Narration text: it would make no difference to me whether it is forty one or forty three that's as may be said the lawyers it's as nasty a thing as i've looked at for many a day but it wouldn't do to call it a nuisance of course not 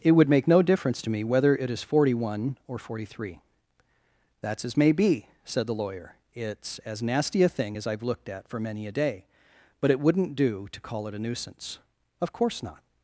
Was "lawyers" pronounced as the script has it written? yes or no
no